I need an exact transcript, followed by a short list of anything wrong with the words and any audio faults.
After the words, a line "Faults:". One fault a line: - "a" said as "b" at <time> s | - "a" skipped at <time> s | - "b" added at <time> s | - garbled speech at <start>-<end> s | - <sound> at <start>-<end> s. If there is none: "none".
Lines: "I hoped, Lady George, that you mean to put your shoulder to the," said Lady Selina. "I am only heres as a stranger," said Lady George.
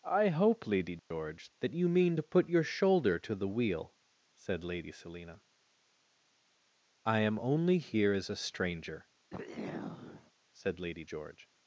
"I hope, Lady George, that you mean to put your shoulder to the wheel," said Lady Selina. "I am only here as a stranger," said Lady George.
Faults:
- "hoped" said as "hope" at 0.3 s
- dropout at 1.0-1.1 s
- "wheel" added at 3.5 s
- "heres" said as "here" at 7.8 s
- throat clearing at 9.3-10.3 s